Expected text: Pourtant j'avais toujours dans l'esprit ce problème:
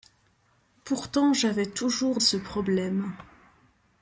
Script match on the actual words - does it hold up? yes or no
no